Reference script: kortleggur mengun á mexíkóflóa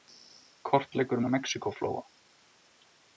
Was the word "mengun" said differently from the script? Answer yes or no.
yes